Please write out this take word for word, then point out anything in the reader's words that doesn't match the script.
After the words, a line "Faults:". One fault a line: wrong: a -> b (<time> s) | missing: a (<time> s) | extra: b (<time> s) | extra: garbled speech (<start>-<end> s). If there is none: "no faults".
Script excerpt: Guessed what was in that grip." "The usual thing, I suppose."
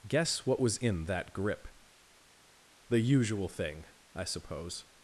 Guess what was in that grip." "The usual thing, I suppose."
Faults:
wrong: Guessed -> Guess (0.1 s)